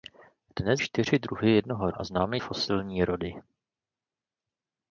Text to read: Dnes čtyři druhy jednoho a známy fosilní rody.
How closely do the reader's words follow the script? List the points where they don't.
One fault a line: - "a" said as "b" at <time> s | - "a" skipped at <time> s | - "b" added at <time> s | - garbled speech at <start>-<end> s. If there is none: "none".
none